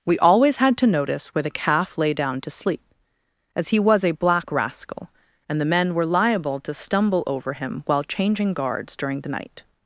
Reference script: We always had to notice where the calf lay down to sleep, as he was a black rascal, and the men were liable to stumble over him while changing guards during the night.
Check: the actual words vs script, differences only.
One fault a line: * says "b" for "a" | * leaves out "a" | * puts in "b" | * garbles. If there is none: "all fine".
all fine